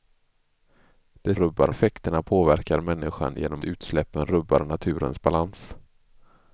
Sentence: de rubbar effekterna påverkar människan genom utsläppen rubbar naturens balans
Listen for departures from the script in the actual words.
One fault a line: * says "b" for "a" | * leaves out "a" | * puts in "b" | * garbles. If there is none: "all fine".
all fine